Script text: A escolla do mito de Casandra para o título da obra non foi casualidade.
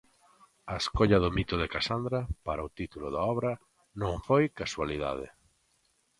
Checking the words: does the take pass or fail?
pass